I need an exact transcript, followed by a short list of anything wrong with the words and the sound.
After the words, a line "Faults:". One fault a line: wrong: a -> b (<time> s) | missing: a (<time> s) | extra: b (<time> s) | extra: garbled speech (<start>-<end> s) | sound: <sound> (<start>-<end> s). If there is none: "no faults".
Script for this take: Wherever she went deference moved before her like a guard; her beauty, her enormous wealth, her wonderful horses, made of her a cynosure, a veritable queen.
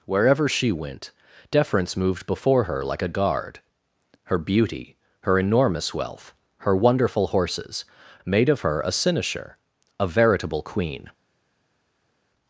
Wherever she went deference moved before her like a guard; her beauty, her enormous wealth, her wonderful horses, made of her a cynosure, a veritable queen.
Faults:
no faults